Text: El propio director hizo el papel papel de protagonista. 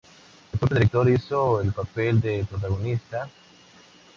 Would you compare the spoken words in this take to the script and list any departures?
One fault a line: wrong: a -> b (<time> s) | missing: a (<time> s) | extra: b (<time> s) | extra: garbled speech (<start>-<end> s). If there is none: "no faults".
missing: papel (2.2 s)